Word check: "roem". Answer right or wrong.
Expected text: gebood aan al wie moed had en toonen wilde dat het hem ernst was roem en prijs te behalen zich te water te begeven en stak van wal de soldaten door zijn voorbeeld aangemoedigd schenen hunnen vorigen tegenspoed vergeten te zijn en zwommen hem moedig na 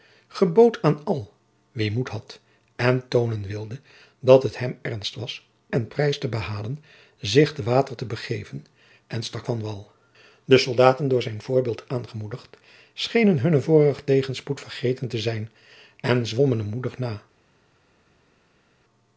wrong